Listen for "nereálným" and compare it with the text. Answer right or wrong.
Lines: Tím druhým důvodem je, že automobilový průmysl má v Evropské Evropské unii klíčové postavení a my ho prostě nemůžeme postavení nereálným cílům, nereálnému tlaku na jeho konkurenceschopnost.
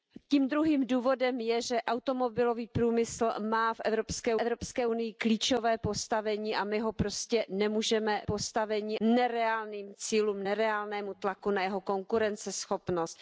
right